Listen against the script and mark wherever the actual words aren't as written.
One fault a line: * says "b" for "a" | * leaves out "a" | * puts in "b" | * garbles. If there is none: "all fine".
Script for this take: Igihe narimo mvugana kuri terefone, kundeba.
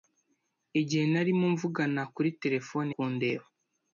all fine